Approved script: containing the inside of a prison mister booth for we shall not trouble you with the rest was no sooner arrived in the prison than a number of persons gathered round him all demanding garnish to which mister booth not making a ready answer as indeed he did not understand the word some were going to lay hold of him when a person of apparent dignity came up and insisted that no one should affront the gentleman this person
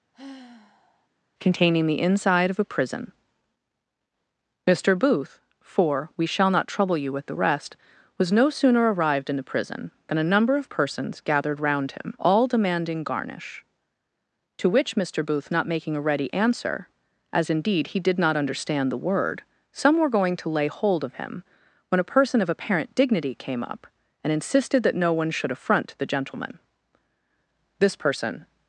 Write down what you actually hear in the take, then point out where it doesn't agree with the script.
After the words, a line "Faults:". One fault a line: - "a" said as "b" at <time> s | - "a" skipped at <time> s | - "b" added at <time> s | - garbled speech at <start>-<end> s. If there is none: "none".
containing the inside of a prison mister booth for we shall not trouble you with the rest was no sooner arrived in the prison than a number of persons gathered round him all demanding garnish to which mister booth not making a ready answer as indeed he did not understand the word some were going to lay hold of him when a person of apparent dignity came up and insisted that no one should affront the gentleman this person
Faults:
none